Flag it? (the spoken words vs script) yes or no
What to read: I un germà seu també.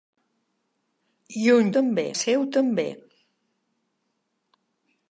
yes